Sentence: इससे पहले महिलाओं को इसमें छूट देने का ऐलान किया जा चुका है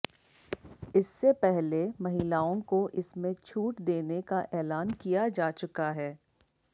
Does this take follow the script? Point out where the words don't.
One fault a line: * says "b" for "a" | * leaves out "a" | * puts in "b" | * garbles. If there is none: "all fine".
all fine